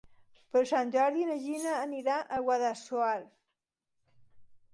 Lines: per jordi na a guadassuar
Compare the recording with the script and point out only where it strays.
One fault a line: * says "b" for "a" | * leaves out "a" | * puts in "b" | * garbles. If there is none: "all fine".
* puts in "sant"
* puts in "gina anirà"